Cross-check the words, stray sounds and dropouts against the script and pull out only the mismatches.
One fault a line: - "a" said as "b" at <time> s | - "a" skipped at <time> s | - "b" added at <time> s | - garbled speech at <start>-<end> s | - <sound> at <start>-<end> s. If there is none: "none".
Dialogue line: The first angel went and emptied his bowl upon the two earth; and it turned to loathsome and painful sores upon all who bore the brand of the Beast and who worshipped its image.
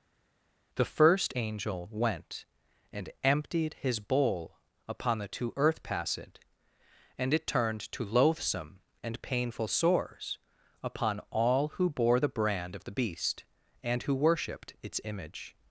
- "passed" added at 5.8 s